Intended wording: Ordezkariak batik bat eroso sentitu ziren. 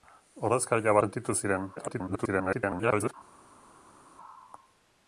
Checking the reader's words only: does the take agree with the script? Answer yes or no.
no